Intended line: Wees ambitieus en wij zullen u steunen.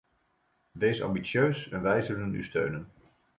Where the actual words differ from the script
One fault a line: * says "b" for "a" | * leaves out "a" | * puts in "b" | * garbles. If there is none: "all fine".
all fine